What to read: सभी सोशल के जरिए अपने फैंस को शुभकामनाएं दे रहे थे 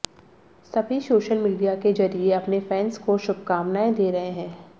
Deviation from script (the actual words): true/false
true